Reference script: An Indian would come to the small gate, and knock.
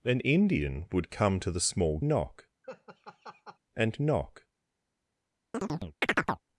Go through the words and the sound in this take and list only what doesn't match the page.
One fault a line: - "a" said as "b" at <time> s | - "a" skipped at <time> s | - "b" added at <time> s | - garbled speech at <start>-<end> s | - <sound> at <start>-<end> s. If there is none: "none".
- "gate" said as "knock" at 2.0 s
- laugh at 2.6-3.6 s
- chirp at 5.5-6.4 s